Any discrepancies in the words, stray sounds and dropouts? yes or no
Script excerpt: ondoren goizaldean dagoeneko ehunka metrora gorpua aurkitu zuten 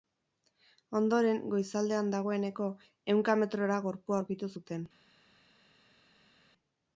no